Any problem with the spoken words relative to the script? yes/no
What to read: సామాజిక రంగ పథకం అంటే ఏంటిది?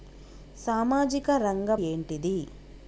yes